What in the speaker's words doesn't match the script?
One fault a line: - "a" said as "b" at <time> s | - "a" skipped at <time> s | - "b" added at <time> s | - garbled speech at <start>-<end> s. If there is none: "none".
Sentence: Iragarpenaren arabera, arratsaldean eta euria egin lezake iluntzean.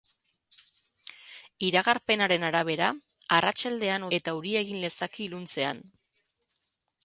none